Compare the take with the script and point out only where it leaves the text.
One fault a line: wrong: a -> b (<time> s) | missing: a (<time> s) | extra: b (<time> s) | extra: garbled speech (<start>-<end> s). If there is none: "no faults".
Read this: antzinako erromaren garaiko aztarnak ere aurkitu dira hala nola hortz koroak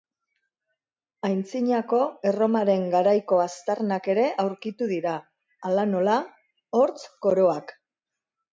no faults